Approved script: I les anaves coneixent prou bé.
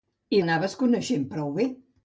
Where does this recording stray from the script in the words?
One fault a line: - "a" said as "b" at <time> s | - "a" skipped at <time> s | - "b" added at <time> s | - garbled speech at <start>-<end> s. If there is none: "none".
- "les" skipped at 0.4 s